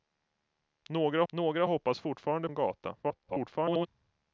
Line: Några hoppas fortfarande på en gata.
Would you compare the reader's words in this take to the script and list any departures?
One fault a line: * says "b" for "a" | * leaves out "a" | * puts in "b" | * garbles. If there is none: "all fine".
* puts in "några"
* leaves out "på"
* garbles